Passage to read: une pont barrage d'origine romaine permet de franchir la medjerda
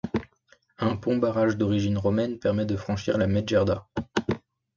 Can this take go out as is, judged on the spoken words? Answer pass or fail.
fail